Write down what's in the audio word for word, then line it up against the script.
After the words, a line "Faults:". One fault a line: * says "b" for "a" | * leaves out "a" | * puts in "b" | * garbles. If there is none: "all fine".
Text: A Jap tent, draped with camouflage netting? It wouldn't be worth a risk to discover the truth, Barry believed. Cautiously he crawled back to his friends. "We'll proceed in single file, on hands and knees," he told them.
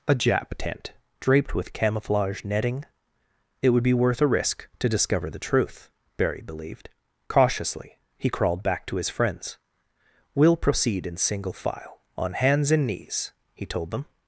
A Jap tent, draped with camouflage netting? It would be worth a risk to discover the truth, Barry believed. Cautiously he crawled back to his friends. "We'll proceed in single file, on hands and knees," he told them.
Faults:
* says "would" for "wouldn't"